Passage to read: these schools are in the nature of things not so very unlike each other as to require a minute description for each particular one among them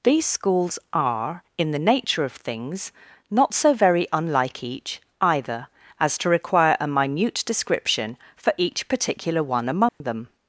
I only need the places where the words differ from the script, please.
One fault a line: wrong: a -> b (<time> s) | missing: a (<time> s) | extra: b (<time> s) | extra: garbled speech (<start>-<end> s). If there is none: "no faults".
wrong: other -> either (5.2 s)